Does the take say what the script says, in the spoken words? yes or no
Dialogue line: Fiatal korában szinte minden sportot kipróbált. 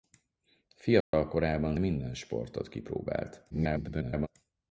no